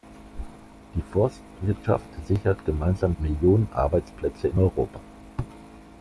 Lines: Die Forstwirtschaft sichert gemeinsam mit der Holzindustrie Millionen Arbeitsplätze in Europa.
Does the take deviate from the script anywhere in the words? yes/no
yes